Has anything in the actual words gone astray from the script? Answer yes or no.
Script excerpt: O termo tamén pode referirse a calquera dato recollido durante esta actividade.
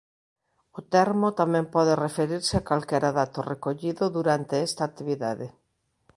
no